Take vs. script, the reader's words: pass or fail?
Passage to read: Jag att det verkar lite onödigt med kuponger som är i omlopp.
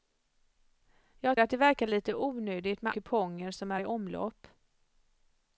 pass